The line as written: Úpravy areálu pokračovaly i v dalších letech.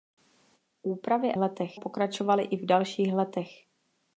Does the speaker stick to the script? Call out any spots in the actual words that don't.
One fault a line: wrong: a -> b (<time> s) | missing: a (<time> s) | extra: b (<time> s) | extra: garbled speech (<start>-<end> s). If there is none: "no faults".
wrong: areálu -> letech (1.4 s)